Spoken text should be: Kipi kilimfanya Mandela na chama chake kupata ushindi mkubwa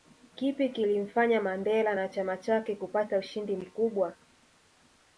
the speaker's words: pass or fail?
pass